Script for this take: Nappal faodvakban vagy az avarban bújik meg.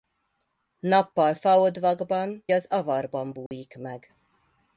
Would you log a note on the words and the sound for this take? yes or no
yes